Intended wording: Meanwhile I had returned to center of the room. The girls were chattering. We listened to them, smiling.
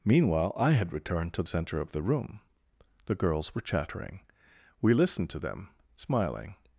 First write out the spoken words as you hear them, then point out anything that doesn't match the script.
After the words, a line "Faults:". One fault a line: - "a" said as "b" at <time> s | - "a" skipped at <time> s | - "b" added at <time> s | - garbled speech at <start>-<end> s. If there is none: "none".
Meanwhile I had returned to center of the room. The girls were chattering. We listened to them, smiling.
Faults:
none